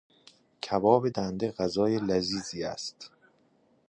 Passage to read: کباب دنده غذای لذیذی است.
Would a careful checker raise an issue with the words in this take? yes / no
no